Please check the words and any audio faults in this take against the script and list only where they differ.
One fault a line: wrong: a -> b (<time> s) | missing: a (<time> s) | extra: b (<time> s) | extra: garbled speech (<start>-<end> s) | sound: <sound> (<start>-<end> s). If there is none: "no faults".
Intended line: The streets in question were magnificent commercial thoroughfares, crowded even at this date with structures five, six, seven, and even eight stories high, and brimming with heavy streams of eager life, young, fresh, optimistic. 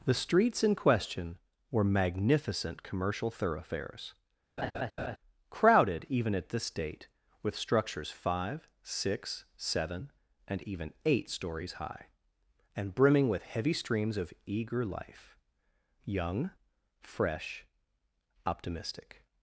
sound: laugh (4.6-5.2 s)